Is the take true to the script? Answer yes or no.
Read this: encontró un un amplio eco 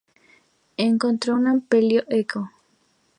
no